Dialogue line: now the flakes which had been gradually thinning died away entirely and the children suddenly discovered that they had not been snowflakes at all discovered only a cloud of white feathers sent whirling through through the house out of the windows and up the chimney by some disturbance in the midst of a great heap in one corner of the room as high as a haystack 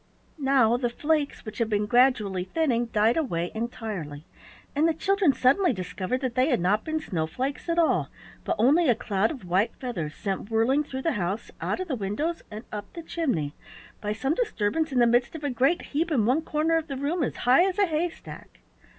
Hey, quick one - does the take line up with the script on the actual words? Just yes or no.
no